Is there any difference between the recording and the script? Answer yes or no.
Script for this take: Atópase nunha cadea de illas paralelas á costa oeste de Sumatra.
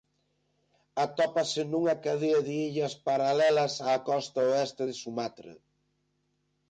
no